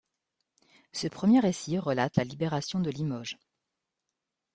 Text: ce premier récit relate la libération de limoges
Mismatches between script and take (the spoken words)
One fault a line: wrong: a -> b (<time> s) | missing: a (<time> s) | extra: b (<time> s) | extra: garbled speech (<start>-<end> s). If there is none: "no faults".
no faults